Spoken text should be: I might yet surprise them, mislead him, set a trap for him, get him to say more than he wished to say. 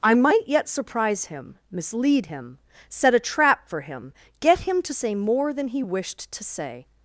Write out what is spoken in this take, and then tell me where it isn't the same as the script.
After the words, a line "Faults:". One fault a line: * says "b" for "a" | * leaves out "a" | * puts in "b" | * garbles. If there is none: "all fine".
I might yet surprise him, mislead him, set a trap for him, get him to say more than he wished to say.
Faults:
* says "him" for "them"